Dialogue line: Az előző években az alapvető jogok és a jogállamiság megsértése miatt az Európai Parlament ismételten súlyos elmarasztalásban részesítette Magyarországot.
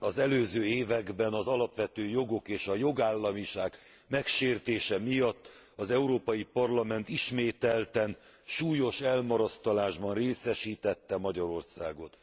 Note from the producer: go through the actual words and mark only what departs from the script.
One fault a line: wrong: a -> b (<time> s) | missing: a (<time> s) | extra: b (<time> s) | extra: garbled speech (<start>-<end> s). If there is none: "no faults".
no faults